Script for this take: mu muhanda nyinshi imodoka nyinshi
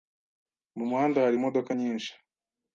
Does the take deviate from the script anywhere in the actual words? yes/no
yes